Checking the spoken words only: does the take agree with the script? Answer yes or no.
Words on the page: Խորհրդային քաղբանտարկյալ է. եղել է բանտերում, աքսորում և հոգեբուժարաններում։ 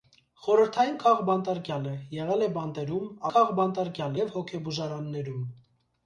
no